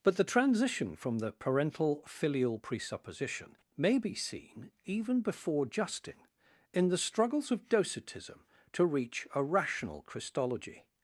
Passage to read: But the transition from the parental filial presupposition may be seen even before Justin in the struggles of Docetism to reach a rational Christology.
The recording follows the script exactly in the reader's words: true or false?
true